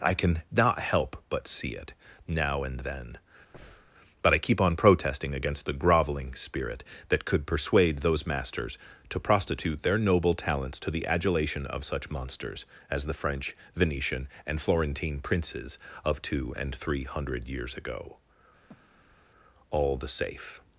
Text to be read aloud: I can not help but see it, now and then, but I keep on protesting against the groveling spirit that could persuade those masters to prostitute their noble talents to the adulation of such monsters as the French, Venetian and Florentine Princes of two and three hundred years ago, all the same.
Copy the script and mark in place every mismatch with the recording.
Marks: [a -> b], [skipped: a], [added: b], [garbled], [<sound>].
I can not help but see it, now and then, [breath] but I keep on protesting against the groveling spirit that could persuade those masters to prostitute their noble talents to the adulation of such monsters as the French, Venetian and Florentine Princes of two and three hundred years ago, [breath] all the [same. -> safe]